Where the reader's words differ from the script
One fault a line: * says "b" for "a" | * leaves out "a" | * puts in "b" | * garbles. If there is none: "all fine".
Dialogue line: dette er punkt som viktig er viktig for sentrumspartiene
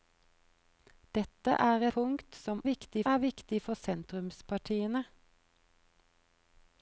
all fine